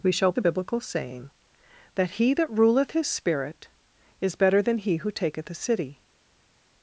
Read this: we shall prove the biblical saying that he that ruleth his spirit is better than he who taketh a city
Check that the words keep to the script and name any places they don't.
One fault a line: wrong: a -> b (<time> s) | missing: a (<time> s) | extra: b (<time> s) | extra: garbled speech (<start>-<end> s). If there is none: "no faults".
missing: prove (0.3 s)